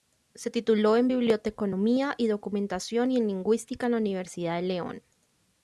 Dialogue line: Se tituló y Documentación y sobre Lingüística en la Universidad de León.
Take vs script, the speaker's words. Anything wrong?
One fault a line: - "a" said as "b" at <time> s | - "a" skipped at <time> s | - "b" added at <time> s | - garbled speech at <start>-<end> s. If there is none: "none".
- "en Biblioteconomía" added at 1.0 s
- "sobre" said as "en" at 3.2 s